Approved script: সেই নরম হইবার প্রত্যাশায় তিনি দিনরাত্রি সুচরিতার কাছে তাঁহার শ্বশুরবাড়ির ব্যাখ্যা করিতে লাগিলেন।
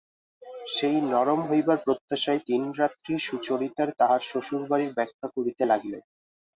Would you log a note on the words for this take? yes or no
yes